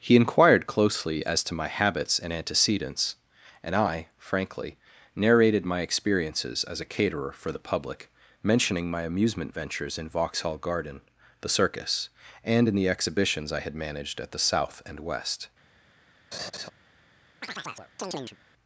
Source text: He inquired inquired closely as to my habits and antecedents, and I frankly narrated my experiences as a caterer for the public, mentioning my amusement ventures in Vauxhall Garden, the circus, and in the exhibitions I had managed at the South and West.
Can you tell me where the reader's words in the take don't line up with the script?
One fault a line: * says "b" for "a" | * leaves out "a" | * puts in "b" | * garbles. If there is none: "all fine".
* leaves out "inquired"